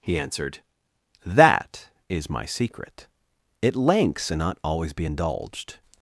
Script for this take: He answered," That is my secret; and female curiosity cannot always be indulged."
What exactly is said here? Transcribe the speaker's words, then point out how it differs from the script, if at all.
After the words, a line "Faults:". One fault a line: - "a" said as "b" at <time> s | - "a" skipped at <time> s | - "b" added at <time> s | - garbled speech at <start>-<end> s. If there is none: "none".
He answered," That is my secret; it lengths and not always be indulged."
Faults:
- "and female curiosity cannot" said as "it lengths and not" at 3.6 s